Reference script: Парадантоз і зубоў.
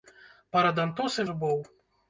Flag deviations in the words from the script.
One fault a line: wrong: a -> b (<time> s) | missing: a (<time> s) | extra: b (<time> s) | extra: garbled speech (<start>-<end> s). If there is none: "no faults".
no faults